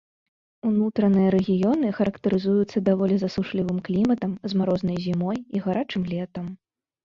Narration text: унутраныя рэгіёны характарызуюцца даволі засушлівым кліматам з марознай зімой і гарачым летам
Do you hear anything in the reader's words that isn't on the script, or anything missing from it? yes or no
no